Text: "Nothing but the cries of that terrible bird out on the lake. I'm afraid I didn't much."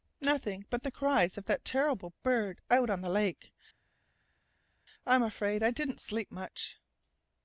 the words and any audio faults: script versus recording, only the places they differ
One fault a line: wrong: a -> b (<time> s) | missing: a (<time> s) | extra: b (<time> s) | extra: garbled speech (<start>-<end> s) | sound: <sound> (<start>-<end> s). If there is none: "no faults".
extra: sleep (6.0 s)